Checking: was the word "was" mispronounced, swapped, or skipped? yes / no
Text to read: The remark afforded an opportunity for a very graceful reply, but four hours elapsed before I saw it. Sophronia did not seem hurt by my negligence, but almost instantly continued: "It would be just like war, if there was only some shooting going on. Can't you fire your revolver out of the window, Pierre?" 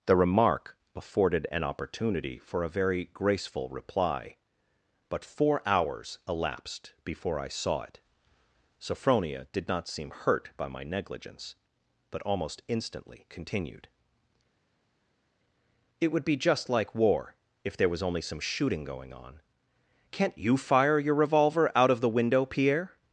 no